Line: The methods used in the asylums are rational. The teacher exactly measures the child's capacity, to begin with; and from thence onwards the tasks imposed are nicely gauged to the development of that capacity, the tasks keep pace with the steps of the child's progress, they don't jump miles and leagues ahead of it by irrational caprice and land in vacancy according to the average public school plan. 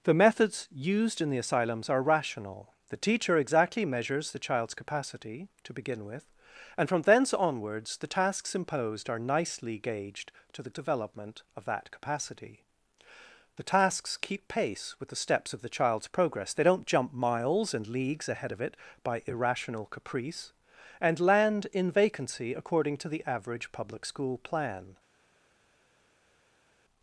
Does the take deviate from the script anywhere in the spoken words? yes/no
no